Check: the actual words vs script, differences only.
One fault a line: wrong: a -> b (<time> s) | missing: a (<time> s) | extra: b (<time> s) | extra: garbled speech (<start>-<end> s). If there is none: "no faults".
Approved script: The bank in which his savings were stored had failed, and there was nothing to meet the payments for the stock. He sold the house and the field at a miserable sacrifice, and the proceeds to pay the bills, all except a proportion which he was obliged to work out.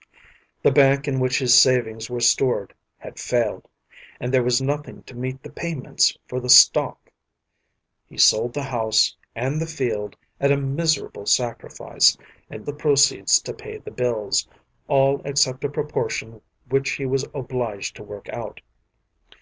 no faults